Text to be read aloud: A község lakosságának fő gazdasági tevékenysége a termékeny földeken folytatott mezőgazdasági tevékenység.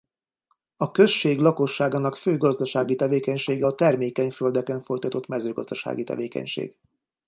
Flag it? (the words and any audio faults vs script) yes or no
no